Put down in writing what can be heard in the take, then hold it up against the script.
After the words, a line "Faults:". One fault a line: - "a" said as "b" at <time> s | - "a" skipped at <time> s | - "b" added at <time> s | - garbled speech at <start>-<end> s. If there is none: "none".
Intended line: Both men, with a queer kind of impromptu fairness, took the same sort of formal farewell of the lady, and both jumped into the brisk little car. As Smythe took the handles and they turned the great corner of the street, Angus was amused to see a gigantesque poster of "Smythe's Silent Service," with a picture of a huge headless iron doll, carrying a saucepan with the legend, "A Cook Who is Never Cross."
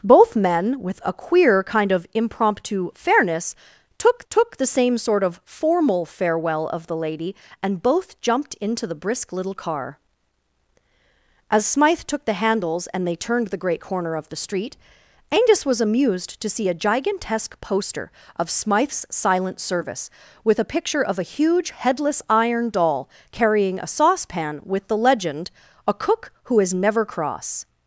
Both men, with a queer kind of impromptu fairness, took took the same sort of formal farewell of the lady, and both jumped into the brisk little car. As Smythe took the handles and they turned the great corner of the street, Angus was amused to see a gigantesque poster of "Smythe's Silent Service," with a picture of a huge headless iron doll, carrying a saucepan with the legend, "A Cook Who is Never Cross."
Faults:
- "took" added at 4.3 s